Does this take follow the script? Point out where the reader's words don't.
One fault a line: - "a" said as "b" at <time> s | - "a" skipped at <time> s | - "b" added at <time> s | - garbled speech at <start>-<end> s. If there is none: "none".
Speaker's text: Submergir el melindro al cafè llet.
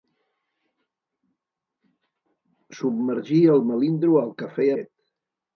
none